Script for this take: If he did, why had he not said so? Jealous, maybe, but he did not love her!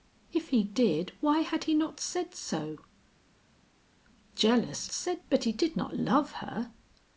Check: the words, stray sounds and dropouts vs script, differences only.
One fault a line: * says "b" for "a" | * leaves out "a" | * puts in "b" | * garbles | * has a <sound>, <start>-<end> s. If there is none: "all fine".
* says "said" for "maybe"